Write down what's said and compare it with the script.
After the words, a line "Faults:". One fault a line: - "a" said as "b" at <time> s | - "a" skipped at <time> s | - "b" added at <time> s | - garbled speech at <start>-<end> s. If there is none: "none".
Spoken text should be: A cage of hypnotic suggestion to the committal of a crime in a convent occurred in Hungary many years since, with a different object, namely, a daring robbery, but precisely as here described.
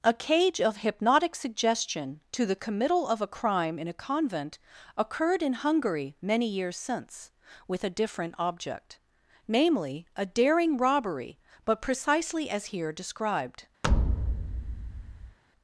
A cage of hypnotic suggestion to the committal of a crime in a convent occurred in Hungary many years since, with a different object, namely, a daring robbery, but precisely as here described.
Faults:
none